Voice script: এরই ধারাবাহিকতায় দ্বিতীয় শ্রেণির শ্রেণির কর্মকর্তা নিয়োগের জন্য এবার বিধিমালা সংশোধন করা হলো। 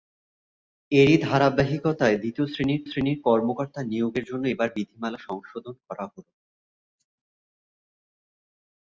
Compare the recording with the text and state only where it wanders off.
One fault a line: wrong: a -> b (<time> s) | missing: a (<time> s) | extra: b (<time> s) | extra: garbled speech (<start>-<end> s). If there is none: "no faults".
no faults